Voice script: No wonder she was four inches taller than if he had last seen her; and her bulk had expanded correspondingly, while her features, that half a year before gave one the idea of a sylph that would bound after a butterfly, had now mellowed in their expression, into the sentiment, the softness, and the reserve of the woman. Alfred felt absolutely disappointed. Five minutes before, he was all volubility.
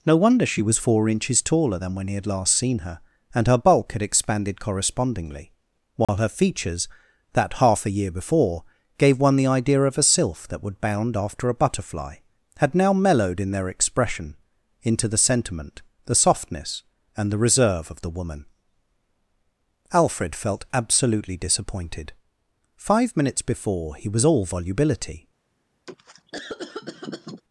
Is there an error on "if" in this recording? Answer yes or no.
yes